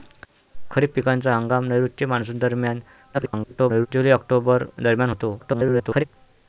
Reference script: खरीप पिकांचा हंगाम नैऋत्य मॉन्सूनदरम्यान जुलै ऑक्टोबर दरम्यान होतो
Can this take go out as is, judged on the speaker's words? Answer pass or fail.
fail